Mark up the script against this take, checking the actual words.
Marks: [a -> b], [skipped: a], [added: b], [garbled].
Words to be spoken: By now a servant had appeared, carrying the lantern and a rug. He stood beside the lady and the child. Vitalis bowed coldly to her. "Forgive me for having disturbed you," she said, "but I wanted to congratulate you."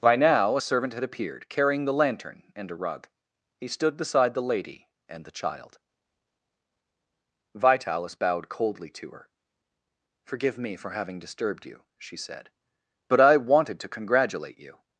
By now a servant had appeared, carrying the lantern and a rug. He stood beside the lady and the child. Vitalis bowed coldly to her. "Forgive me for having disturbed you," she said, "but I wanted to congratulate you."